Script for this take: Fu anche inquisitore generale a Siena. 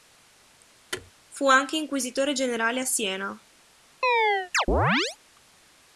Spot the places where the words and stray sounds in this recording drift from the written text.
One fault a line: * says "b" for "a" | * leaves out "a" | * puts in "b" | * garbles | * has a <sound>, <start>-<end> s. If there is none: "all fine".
* has a thud, 0.9-1.1 s
* has a chirp, 4.0-5.2 s